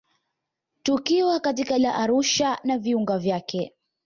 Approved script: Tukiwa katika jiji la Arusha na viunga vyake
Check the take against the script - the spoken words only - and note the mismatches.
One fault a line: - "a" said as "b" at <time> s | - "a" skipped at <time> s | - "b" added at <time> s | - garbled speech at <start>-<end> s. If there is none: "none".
- "jiji" skipped at 1.8 s